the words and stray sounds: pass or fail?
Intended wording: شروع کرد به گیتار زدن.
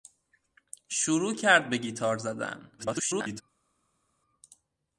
fail